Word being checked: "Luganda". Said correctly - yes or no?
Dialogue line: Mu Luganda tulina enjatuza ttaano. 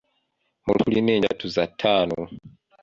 no